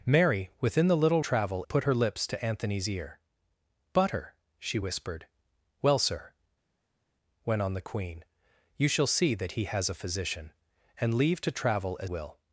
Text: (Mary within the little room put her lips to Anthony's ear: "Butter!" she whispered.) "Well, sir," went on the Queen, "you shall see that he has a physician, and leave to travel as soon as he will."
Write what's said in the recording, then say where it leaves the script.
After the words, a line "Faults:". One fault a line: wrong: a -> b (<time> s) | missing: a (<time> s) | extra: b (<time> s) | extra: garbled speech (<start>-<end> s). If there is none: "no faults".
(Mary within the little travel put her lips to Anthony's ear: "Butter!" she whispered.) "Well, sir," went on the Queen, "you shall see that he has a physician, and leave to travel as will."
Faults:
wrong: room -> travel (1.2 s)
missing: soon as he (12.1 s)